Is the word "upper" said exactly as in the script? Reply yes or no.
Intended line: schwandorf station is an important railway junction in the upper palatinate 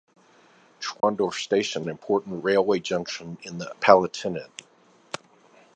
no